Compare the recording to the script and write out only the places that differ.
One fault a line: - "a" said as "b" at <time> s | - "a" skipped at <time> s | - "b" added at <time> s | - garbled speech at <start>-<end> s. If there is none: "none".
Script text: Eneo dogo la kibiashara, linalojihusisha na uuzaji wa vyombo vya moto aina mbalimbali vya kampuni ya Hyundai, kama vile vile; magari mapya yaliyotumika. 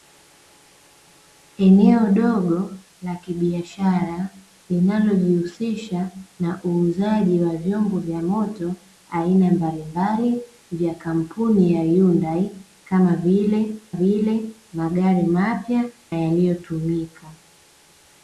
none